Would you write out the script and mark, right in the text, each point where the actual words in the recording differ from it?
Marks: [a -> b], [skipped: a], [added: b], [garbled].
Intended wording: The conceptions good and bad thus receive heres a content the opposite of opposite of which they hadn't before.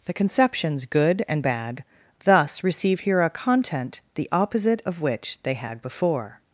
The conceptions good and bad thus receive [heres -> here] a content the opposite of [skipped: opposite of] which they [hadn't -> had] before.